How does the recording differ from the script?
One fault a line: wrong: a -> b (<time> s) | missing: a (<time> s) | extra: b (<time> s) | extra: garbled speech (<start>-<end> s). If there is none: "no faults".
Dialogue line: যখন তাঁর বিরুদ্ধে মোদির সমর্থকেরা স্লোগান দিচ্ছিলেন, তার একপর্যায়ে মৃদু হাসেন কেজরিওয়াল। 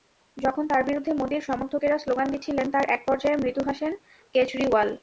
no faults